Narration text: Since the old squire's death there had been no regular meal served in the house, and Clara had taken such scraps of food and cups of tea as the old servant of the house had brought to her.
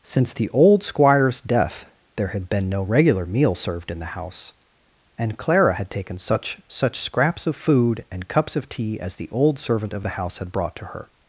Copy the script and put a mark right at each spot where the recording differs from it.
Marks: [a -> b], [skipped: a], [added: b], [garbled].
Since the old squire's death there had been no regular meal served in the house, and Clara had taken such [added: such] scraps of food and cups of tea as the old servant of the house had brought to her.